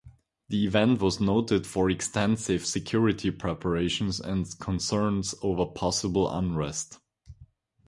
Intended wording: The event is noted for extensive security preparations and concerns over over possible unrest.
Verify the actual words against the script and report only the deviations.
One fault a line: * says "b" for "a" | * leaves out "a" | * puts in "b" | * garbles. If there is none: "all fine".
* says "was" for "is"
* leaves out "over"